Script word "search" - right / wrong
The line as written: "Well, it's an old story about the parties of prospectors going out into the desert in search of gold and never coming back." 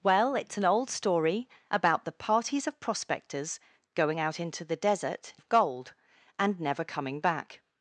wrong